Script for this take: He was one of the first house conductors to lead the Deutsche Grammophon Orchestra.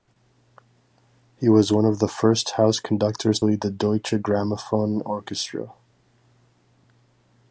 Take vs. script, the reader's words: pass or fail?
fail